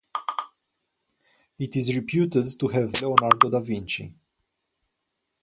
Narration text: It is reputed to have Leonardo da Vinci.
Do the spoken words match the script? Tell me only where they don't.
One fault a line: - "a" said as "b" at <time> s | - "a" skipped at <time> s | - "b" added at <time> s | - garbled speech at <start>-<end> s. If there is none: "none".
none